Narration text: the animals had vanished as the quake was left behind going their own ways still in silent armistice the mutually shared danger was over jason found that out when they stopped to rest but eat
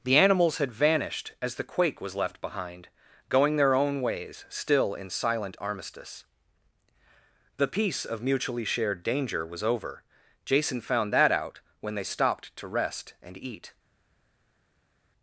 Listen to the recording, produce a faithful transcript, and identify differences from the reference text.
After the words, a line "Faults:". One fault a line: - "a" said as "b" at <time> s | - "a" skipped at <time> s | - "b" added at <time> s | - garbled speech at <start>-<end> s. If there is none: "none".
the animals had vanished as the quake was left behind going their own ways still in silent armistice the peace of mutually shared danger was over jason found that out when they stopped to rest and eat
Faults:
- "peace of" added at 7.7 s
- "but" said as "and" at 13.2 s